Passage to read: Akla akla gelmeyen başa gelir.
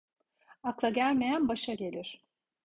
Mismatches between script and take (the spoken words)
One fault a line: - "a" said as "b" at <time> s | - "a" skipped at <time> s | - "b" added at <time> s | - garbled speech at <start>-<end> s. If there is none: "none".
- "akla" skipped at 0.9 s